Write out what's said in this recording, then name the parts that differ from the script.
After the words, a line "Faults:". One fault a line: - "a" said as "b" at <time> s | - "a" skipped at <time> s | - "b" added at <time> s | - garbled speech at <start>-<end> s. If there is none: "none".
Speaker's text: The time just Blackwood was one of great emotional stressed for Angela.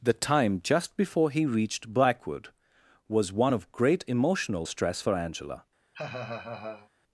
The time just before he reached Blackwood was one of great emotional stress for Angela.
Faults:
- "before he reached" added at 1.0 s
- "stressed" said as "stress" at 4.6 s